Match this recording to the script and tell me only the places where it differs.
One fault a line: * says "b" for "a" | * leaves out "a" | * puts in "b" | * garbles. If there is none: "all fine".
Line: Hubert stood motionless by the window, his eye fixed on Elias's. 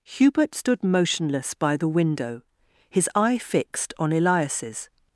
all fine